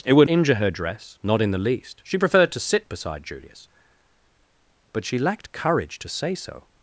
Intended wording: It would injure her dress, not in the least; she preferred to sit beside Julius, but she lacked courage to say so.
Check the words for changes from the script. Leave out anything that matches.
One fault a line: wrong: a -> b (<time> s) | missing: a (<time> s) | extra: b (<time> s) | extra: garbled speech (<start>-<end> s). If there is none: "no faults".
no faults